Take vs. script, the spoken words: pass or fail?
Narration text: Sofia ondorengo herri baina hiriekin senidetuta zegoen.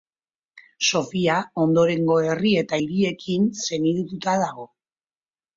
fail